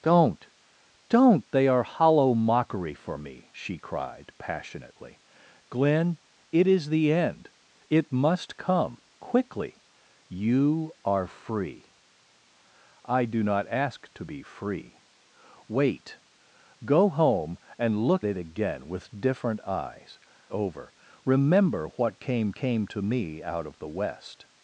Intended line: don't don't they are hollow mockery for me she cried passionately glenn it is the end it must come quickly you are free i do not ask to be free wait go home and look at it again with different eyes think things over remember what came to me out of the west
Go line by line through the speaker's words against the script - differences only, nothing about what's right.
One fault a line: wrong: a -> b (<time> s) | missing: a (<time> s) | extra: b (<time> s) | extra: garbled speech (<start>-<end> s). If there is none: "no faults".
missing: at (18.2 s)
missing: think things (20.2 s)
extra: came (22.5 s)